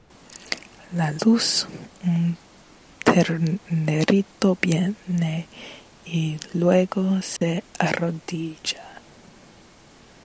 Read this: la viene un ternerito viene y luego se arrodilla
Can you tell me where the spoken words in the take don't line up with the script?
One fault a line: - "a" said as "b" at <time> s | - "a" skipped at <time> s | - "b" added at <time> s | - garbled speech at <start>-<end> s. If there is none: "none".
- "viene" said as "luz" at 1.3 s